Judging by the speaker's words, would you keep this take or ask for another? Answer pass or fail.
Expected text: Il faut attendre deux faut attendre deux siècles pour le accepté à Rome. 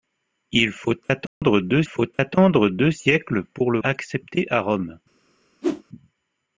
pass